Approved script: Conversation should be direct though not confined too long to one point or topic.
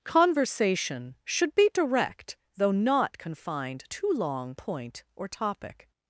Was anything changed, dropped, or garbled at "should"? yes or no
no